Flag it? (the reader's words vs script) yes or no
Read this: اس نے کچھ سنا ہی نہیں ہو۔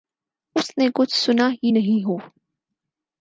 no